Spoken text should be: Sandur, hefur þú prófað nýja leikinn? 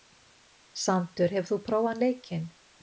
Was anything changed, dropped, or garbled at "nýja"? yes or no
yes